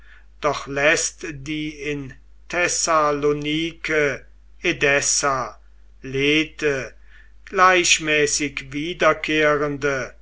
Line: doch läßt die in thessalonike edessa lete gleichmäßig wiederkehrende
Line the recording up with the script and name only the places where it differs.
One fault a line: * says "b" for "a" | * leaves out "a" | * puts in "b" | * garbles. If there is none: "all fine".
all fine